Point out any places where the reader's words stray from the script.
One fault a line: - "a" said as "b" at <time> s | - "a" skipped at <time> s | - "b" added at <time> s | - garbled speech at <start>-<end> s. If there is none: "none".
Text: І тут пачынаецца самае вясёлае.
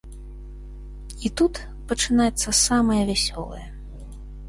none